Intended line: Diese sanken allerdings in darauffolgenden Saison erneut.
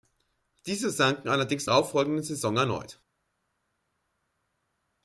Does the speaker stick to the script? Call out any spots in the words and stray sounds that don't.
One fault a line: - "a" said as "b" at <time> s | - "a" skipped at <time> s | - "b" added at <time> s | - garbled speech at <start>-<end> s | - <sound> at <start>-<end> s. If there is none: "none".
none